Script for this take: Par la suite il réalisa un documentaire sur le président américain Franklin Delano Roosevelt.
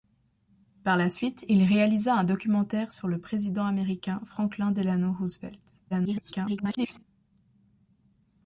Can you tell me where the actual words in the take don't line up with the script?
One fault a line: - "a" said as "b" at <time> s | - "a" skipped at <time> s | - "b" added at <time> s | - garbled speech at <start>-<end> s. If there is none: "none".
- garbled speech at 5.9-7.0 s